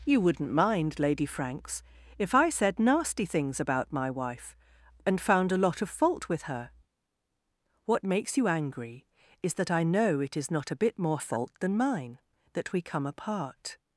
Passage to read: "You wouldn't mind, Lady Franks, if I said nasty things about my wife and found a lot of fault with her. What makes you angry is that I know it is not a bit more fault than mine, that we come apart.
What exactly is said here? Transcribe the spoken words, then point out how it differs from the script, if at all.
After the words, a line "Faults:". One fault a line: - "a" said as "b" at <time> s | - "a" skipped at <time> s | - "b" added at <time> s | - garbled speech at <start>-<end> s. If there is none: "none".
"You wouldn't mind, Lady Franks, if I said nasty things about my wife and found a lot of fault with her. What makes you angry is that I know it is not a bit more fault than mine, that we come apart.
Faults:
none